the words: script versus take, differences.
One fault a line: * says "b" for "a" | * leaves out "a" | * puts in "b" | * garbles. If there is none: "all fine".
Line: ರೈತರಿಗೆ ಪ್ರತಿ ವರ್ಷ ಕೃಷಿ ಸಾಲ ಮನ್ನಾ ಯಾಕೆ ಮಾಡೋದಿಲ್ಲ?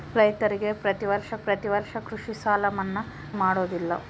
* puts in "ಪ್ರತಿ ವರ್ಷ"
* leaves out "ಯಾಕೆ"